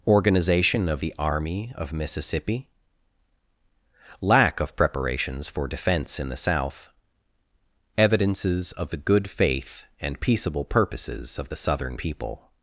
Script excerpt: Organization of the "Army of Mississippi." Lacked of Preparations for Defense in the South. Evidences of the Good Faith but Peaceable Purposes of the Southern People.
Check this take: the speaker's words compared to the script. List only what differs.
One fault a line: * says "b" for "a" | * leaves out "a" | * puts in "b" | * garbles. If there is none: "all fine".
* says "Lack" for "Lacked"
* says "and" for "but"